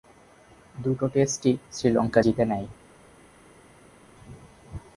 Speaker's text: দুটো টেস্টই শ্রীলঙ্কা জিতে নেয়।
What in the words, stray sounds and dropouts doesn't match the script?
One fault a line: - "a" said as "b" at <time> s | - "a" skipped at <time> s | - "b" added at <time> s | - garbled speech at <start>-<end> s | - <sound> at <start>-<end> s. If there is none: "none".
none